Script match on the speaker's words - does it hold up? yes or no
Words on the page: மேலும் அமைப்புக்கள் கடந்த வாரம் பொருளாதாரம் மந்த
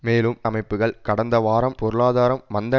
yes